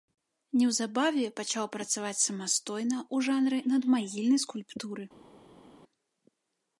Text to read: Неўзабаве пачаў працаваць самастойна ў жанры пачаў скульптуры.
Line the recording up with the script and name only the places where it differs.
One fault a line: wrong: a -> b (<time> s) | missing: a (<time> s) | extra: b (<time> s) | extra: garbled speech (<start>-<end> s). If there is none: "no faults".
wrong: пачаў -> надмагільнай (3.8 s)